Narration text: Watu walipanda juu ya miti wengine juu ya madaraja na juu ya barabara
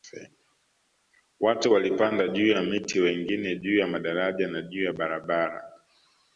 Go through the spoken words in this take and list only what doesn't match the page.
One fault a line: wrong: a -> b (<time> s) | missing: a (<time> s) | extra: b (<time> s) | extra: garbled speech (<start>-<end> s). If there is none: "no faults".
no faults